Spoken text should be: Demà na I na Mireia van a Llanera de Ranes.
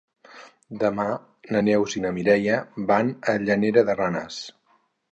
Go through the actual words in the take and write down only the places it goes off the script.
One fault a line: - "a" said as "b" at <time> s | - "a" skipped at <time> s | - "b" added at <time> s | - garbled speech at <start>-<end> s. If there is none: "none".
- "Neus" added at 1.6 s